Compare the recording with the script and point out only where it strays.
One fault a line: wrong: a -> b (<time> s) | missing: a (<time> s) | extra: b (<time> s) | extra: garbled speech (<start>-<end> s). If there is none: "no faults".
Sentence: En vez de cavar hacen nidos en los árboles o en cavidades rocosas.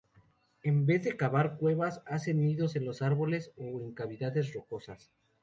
extra: cuevas (1.6 s)